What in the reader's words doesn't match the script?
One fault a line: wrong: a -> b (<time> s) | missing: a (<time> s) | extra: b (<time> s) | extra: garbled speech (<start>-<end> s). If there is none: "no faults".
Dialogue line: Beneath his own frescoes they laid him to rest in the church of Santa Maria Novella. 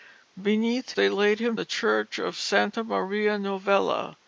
missing: his own frescoes (0.9 s)
missing: to rest in (1.6 s)